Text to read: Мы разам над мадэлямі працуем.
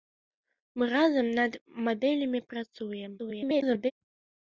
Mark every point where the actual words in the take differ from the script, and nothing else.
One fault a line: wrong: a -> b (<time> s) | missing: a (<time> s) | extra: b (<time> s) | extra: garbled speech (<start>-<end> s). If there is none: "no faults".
extra: garbled speech (3.2-3.9 s)